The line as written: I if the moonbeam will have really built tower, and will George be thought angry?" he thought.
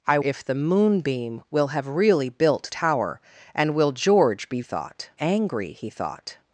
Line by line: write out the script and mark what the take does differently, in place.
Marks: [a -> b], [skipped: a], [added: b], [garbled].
I if the moonbeam will have really built tower, and will George be thought angry?" he thought.